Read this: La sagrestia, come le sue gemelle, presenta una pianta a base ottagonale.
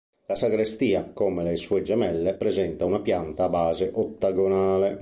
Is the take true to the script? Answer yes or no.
yes